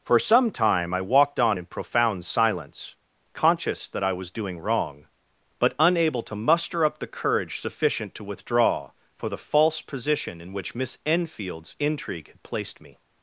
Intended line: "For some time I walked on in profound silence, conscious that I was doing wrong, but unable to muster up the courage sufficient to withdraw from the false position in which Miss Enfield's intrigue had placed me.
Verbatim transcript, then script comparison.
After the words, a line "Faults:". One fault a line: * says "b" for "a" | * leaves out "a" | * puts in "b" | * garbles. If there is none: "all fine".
"For some time I walked on in profound silence, conscious that I was doing wrong, but unable to muster up the courage sufficient to withdraw for the false position in which Miss Enfield's intrigue had placed me.
Faults:
* says "for" for "from"